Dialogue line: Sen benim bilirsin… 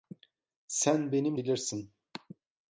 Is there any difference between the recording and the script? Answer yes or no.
no